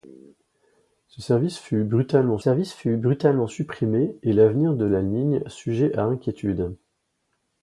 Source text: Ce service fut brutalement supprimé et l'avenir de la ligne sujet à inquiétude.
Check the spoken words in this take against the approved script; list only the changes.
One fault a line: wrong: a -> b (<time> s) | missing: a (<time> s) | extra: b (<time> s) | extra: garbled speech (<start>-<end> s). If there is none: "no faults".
extra: service fut brutalement (2.4 s)